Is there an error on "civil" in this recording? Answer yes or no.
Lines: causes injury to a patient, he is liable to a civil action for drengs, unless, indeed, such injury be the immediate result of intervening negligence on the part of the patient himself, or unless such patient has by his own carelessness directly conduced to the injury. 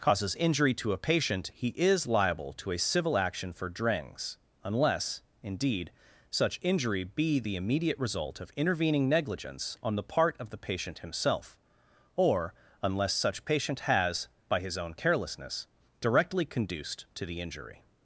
no